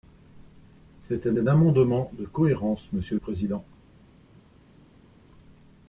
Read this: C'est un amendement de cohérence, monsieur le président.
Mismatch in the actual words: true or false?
true